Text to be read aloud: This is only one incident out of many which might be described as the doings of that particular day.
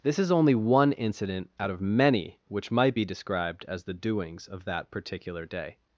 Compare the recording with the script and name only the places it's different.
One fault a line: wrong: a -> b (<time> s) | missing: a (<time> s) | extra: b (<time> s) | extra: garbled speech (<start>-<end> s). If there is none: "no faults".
no faults